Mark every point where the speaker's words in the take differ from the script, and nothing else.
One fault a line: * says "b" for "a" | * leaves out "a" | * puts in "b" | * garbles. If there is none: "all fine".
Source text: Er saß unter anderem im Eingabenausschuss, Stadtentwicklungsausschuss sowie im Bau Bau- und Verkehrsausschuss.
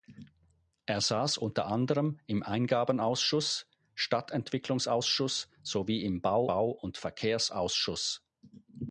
all fine